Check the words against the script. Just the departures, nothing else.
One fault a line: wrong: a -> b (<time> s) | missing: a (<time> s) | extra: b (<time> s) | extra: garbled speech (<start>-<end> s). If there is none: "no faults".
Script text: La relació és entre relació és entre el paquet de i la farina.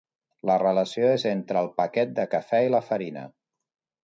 missing: relació és entre (1.6 s)
extra: cafè (2.4 s)